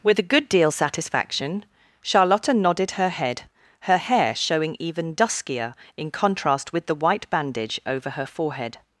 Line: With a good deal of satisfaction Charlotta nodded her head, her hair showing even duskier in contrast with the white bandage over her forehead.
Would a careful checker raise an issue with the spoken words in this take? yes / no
yes